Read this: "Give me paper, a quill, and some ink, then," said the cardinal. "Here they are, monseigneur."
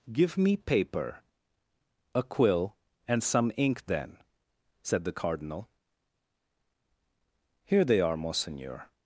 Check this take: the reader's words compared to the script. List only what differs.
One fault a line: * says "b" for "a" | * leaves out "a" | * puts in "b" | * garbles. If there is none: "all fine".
all fine